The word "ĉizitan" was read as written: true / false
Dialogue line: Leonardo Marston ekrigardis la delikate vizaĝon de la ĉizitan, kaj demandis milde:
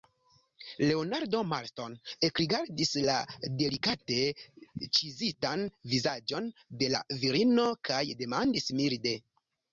false